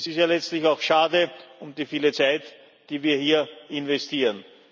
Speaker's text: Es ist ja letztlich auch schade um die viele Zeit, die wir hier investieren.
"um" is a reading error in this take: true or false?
false